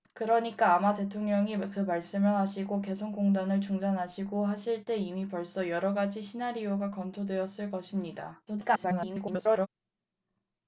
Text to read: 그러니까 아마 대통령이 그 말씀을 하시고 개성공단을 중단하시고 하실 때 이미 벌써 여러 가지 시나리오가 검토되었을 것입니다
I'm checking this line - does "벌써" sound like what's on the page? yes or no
yes